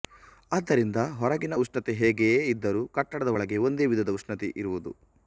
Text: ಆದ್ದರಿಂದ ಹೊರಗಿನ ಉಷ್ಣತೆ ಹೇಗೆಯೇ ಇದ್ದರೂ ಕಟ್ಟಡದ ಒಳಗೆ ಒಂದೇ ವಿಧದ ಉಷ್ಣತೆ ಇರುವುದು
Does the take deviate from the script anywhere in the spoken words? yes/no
no